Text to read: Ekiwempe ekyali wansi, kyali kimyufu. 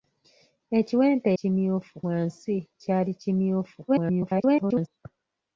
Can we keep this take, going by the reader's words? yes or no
no